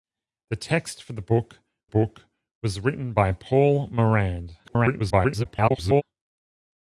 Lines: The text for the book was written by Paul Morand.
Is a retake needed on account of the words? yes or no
yes